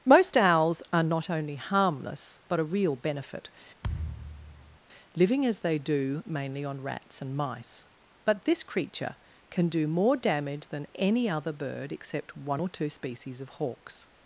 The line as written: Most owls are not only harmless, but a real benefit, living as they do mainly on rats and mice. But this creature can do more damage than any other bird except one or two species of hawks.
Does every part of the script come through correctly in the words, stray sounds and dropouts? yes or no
no